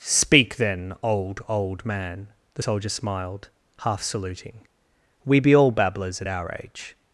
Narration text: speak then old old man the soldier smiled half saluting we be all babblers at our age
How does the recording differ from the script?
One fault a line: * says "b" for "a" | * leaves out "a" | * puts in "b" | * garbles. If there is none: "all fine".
all fine